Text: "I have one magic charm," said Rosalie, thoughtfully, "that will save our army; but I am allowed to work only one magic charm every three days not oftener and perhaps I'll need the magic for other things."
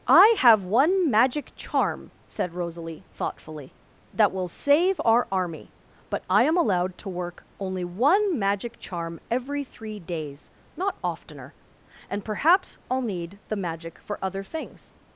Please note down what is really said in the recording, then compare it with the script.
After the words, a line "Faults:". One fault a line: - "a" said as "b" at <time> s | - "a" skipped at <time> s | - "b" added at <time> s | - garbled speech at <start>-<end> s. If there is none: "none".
"I have one magic charm," said Rosalie, thoughtfully, "that will save our army; but I am allowed to work only one magic charm every three days not oftener and perhaps I'll need the magic for other things."
Faults:
none